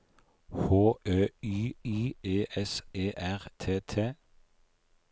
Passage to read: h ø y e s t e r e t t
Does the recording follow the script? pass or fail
fail